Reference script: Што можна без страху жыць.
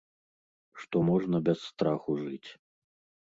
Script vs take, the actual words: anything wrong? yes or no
no